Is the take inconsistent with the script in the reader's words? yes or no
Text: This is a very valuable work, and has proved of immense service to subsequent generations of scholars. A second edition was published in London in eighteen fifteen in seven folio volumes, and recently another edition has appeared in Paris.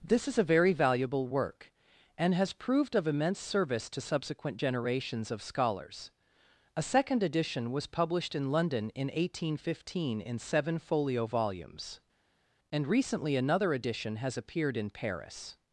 no